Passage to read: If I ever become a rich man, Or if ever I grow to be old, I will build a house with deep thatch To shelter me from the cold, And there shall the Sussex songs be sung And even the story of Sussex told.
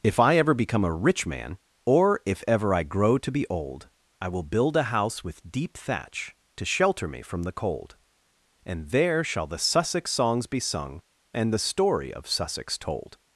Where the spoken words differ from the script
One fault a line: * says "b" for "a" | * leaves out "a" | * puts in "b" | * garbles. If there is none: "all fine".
* leaves out "even"